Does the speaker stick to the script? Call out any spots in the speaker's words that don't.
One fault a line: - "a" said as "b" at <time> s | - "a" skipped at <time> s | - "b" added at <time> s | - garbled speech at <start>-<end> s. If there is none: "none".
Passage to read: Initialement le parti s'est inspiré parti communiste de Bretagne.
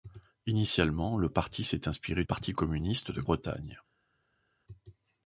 none